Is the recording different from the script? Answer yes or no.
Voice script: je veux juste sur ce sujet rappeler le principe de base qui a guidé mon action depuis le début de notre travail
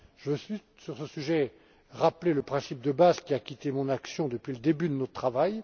no